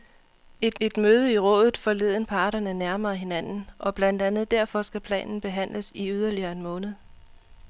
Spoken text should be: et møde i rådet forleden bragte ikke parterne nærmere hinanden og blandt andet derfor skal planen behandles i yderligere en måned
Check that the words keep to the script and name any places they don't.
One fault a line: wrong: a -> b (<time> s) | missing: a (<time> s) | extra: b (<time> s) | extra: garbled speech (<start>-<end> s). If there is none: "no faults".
extra: et (0.8 s)
missing: bragte ikke (2.2 s)